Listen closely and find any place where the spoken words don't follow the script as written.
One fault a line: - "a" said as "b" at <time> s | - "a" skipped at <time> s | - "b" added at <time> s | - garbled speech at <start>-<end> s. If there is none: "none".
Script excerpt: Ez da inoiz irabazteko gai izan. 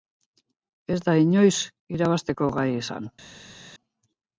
none